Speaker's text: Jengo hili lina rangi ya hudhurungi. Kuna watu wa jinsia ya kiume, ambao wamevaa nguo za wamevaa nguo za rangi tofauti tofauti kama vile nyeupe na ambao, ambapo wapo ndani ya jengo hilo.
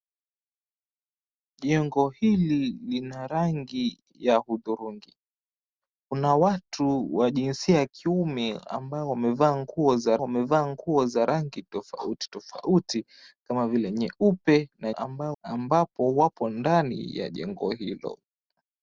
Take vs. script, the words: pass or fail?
pass